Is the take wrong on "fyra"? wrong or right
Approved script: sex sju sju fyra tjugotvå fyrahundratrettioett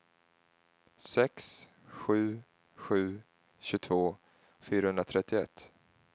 wrong